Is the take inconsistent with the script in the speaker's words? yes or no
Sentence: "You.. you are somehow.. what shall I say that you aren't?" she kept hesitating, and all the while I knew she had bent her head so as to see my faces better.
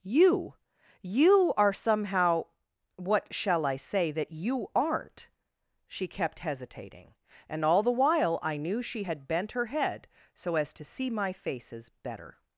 no